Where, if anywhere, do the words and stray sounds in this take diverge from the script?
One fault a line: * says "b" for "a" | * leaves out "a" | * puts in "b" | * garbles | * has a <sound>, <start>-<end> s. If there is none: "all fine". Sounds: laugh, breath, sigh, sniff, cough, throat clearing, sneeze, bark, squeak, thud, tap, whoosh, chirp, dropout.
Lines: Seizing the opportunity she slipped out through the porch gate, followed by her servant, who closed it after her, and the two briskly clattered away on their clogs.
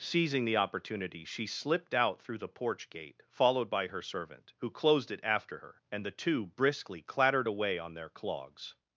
all fine